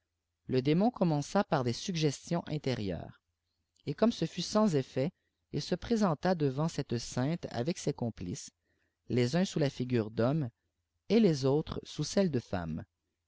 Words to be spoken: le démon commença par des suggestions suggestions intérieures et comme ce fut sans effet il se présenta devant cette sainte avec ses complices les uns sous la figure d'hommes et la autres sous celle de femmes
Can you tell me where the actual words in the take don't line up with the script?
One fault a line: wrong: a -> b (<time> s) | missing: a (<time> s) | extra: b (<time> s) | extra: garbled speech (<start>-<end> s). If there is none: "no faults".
missing: suggestions (2.4 s)
wrong: la -> les (11.2 s)